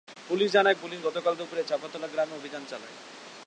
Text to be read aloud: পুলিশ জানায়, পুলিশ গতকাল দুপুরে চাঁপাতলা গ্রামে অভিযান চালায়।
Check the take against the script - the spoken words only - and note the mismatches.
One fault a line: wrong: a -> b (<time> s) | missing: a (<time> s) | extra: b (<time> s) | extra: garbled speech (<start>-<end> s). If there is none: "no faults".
no faults